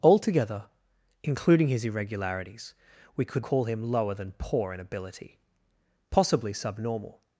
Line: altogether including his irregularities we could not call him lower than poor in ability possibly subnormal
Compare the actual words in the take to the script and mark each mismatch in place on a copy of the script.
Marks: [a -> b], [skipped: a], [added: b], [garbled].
altogether including his irregularities we could [skipped: not] call him lower than poor in ability possibly subnormal